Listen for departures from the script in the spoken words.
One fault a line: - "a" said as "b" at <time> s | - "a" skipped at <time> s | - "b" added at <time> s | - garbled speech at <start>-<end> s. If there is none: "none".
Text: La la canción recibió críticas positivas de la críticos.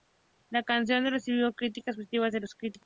- "la" skipped at 0.6 s
- "la" said as "los" at 2.4 s